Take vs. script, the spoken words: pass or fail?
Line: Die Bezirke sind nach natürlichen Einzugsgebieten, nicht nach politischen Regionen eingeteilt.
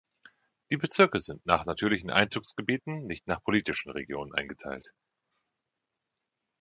pass